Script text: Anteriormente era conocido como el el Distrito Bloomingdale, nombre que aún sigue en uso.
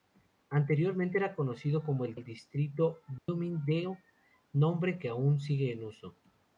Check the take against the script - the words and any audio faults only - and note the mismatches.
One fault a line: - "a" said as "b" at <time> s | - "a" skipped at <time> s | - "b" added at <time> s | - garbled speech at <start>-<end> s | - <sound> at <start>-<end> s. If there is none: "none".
- dropout at 3.2-3.3 s